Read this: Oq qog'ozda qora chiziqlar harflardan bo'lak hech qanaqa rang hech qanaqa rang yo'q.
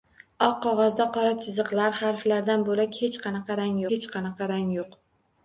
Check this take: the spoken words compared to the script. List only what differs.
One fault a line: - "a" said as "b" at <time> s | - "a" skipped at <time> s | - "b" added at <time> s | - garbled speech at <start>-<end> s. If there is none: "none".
none